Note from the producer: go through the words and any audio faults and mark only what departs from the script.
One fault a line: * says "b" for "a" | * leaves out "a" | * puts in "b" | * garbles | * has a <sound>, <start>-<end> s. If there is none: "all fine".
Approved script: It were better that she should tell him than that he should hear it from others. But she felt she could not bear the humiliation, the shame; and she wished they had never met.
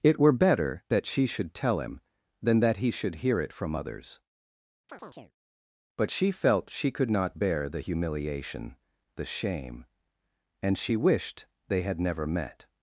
* has a chirp, 4.9-5.3 s